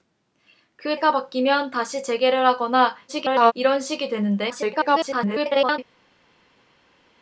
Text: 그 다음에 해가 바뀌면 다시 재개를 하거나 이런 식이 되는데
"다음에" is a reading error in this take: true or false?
true